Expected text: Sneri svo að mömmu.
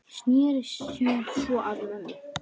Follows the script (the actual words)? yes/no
no